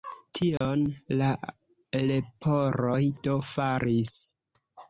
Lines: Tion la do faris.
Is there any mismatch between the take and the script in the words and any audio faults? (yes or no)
yes